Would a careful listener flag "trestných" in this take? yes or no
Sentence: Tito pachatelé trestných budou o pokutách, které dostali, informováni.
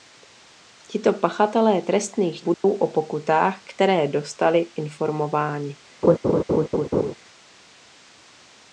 no